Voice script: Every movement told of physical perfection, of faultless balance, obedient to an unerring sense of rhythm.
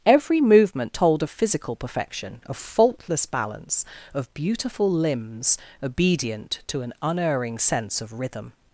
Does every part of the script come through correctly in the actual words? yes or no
no